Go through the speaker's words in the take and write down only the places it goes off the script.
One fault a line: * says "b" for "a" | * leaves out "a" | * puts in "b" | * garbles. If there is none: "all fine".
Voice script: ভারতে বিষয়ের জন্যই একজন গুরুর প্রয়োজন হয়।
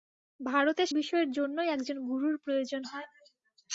all fine